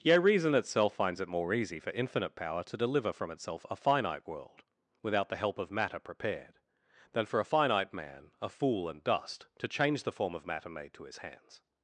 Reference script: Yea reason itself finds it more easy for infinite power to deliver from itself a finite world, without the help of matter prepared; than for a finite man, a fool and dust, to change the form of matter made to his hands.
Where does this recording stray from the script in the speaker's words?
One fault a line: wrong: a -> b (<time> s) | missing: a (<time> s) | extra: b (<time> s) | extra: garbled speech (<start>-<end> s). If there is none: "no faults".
no faults